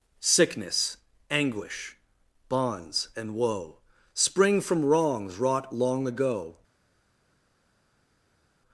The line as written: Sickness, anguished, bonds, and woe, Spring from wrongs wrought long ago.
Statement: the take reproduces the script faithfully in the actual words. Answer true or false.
false